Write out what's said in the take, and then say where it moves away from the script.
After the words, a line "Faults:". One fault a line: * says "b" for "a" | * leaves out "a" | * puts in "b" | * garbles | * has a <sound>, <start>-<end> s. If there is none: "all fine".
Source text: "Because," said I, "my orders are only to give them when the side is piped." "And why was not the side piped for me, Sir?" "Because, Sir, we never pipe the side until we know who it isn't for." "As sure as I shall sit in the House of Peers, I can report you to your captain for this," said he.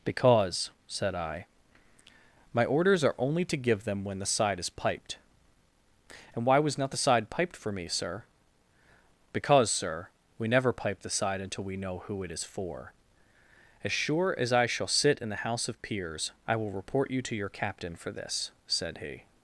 "Because," said I, "my orders are only to give them when the side is piped." "And why was not the side piped for me, Sir?" "Because, Sir, we never pipe the side until we know who it is for." "As sure as I shall sit in the House of Peers, I will report you to your captain for this," said he.
Faults:
* says "is" for "isn't"
* says "will" for "can"